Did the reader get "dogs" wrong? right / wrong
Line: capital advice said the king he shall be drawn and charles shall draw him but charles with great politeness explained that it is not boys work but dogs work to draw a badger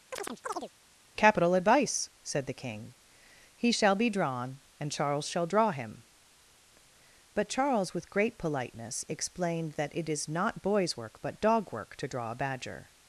wrong